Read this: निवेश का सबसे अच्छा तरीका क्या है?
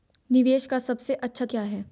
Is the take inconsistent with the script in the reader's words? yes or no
yes